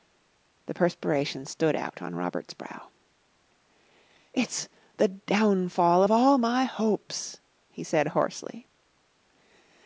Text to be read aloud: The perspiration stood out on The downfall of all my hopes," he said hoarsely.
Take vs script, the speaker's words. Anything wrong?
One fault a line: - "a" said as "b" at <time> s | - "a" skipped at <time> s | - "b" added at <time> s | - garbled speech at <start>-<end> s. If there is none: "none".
- "Robert's brow It's" added at 2.1 s